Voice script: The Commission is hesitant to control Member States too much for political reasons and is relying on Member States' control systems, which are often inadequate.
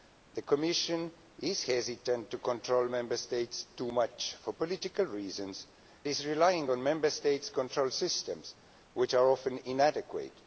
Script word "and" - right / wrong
wrong